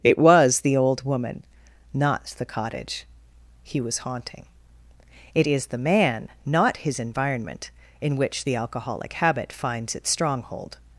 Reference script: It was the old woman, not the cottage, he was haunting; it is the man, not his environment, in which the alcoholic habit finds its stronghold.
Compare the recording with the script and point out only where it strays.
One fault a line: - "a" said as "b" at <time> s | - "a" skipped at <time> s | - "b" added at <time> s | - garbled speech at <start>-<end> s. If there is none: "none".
none